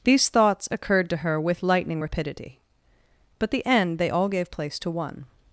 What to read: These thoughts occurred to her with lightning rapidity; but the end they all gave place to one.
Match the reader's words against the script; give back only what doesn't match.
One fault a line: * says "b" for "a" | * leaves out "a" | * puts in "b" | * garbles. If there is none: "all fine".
all fine